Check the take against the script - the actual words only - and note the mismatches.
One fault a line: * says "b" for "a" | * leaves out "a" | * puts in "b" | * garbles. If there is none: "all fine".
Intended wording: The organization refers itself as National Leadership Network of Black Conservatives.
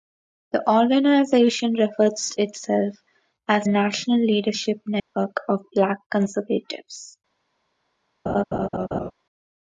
all fine